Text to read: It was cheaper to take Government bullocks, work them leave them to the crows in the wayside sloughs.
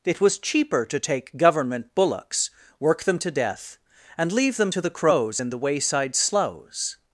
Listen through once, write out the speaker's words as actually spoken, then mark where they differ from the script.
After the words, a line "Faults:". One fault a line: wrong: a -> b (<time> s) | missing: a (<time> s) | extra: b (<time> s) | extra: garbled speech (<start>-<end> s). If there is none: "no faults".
It was cheaper to take Government bullocks, work them to death, and leave them to the crows in the wayside sloughs.
Faults:
extra: to death and (3.2 s)